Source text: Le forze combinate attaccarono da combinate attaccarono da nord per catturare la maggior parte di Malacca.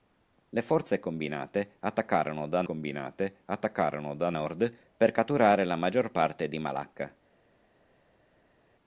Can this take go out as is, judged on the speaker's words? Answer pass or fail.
pass